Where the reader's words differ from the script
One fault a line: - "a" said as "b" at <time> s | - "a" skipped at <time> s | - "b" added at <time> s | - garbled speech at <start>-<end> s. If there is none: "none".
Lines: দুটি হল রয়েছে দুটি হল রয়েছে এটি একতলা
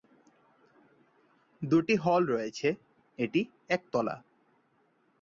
- "দুটি হল রয়েছে" skipped at 2.7 s